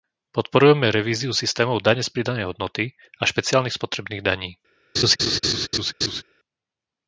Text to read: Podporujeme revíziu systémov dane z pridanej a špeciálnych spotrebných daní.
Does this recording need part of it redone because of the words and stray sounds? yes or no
yes